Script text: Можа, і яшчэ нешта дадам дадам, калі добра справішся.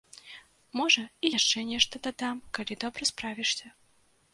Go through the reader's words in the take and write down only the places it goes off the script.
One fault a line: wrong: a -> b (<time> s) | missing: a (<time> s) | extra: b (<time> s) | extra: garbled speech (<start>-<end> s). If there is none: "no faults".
missing: дадам (2.4 s)